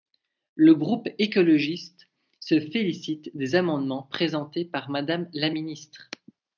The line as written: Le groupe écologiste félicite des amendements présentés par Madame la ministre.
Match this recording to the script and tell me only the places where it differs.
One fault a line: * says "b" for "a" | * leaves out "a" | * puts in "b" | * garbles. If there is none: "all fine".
* puts in "se"